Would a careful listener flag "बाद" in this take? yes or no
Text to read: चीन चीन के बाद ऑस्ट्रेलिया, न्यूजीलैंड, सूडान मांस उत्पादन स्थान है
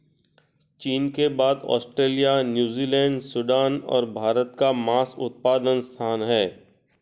no